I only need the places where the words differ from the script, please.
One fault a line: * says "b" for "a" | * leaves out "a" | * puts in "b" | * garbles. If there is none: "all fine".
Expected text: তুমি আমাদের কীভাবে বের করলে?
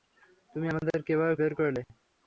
all fine